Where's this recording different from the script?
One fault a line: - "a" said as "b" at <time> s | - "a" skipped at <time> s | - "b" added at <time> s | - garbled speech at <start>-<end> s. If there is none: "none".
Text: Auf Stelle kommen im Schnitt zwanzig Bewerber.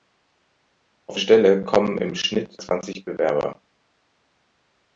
none